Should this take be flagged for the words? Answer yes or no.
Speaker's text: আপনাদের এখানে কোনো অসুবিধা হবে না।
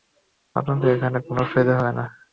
no